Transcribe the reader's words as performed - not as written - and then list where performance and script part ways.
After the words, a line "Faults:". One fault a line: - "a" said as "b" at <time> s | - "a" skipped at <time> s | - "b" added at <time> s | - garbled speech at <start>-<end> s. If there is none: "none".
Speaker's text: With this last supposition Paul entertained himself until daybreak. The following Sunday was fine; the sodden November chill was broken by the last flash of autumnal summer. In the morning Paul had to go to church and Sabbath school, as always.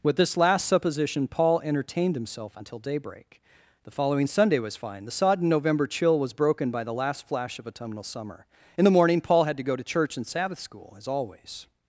With this last supposition Paul entertained himself until daybreak. The following Sunday was fine; the sodden November chill was broken by the last flash of autumnal summer. In the morning Paul had to go to church and Sabbath school, as always.
Faults:
none